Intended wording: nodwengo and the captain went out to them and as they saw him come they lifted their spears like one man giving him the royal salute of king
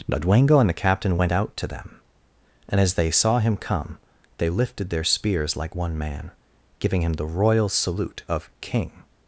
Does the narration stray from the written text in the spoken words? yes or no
no